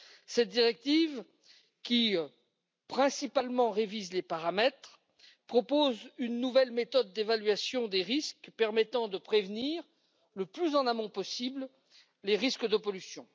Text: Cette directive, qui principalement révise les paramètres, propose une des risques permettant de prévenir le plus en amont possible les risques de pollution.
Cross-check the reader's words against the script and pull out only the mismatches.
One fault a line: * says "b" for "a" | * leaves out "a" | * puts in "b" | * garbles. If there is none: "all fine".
* puts in "nouvelle méthode d'évaluation"